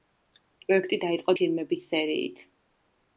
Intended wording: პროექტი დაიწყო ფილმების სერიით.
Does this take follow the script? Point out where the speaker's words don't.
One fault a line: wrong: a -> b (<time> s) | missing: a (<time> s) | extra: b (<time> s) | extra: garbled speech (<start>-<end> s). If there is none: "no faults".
no faults